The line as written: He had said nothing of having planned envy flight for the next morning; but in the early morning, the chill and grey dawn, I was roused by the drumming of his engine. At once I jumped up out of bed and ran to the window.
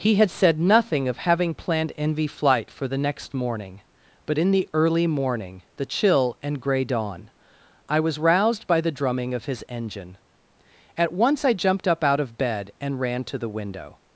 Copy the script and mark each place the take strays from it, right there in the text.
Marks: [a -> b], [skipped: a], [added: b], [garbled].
He had said nothing of having planned envy flight for the next morning; but in the early morning, the chill and grey dawn, I was roused by the drumming of his engine. At once I jumped up out of bed and ran to the window.